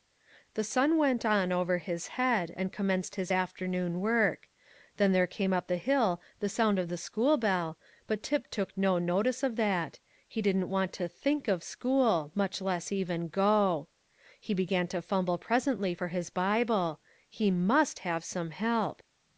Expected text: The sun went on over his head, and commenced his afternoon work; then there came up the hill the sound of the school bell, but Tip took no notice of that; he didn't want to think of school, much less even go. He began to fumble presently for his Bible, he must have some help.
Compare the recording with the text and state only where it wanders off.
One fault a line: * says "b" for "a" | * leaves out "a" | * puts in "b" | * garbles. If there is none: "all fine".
all fine